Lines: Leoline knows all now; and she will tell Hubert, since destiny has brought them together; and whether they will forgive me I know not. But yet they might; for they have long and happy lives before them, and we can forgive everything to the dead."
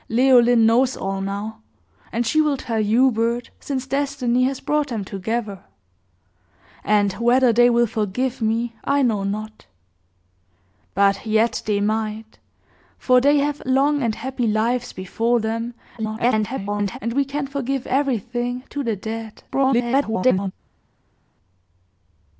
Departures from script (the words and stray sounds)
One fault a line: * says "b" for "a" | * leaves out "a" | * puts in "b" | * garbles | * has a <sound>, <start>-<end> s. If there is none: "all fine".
* garbles
* garbles